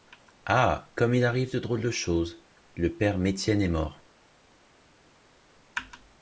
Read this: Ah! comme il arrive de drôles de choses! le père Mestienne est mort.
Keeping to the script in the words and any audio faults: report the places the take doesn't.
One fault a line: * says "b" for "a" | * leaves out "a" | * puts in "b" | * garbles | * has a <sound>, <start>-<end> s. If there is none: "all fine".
all fine